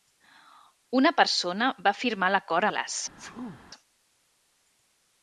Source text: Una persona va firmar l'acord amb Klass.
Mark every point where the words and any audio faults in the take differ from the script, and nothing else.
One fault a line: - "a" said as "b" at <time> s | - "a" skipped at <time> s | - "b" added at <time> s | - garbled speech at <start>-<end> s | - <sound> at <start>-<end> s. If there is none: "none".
- "amb" skipped at 2.7 s
- sneeze at 3.2-3.6 s